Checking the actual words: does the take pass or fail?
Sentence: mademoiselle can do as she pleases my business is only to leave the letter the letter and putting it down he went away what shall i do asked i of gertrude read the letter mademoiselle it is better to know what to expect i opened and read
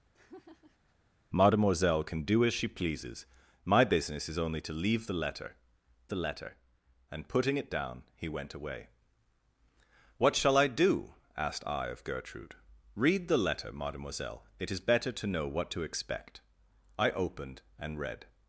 pass